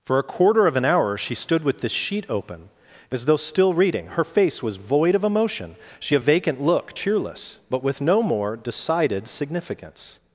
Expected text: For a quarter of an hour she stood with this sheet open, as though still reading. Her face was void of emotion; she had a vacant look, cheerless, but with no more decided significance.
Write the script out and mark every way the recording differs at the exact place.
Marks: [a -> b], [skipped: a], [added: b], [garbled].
For a quarter of an hour she stood with this sheet open, as though still reading. Her face was void of emotion; she [skipped: had] a vacant look, cheerless, but with no more decided significance.